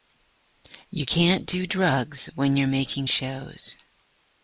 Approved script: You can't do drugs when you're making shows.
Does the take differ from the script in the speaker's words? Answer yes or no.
no